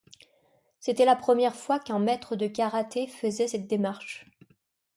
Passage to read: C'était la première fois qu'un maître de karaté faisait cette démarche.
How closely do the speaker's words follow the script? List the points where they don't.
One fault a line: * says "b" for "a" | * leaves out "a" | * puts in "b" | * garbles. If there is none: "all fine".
all fine